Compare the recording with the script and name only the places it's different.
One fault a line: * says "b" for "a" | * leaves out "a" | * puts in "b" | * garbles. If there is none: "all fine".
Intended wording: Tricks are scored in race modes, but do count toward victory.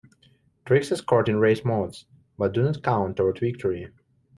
* puts in "not"